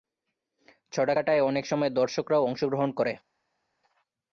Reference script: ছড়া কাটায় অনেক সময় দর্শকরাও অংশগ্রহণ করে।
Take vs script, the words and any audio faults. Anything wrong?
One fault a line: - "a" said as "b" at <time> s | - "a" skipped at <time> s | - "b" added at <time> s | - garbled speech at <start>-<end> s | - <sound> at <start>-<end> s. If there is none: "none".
none